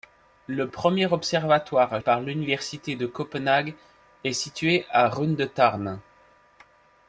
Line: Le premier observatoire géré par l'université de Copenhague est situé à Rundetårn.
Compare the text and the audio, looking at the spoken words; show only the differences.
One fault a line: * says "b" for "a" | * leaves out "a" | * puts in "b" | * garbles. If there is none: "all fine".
* leaves out "géré"